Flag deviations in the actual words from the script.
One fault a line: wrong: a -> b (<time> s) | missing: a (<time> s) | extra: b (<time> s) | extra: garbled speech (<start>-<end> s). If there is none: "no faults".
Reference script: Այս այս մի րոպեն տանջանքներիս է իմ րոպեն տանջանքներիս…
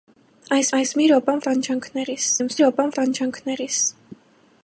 no faults